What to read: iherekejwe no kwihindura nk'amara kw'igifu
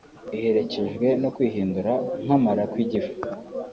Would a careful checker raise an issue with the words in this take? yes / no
no